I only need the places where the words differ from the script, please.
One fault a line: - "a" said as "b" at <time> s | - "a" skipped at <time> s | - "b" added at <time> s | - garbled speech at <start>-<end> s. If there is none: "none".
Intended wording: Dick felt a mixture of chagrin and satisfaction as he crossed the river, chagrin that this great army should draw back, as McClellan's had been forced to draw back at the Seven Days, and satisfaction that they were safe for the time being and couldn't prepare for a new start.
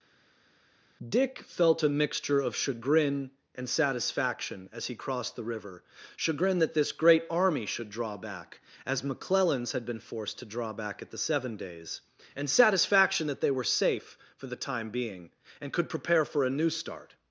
- "couldn't" said as "could" at 15.7 s